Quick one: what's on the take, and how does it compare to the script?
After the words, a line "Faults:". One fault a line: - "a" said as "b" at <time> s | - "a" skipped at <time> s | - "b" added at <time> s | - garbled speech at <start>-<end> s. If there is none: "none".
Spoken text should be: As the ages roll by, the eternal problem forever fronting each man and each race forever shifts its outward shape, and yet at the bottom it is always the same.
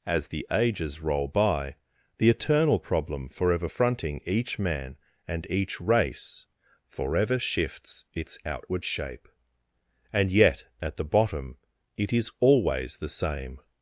As the ages roll by, the eternal problem forever fronting each man and each race forever shifts its outward shape, and yet at the bottom it is always the same.
Faults:
none